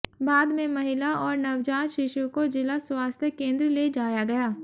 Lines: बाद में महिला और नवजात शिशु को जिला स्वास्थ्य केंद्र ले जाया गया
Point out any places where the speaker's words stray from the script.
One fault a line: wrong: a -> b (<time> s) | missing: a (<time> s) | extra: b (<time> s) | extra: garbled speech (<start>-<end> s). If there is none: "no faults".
no faults